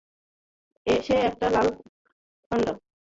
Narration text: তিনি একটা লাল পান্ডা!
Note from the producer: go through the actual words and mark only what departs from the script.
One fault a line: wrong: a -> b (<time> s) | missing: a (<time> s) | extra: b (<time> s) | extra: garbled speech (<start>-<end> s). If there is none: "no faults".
wrong: তিনি -> সে (0.9 s)